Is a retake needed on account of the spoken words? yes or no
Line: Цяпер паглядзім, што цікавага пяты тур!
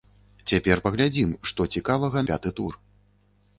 no